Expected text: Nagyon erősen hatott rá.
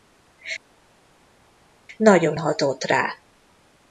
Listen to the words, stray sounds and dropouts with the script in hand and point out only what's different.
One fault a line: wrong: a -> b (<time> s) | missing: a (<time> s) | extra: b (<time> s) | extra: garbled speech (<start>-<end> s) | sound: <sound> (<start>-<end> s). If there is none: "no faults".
missing: erősen (2.4 s)